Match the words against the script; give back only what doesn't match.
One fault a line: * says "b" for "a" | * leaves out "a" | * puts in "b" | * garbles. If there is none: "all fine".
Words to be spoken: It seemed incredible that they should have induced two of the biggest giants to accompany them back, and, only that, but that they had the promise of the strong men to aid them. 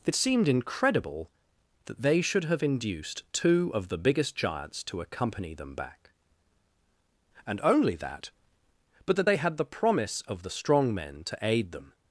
all fine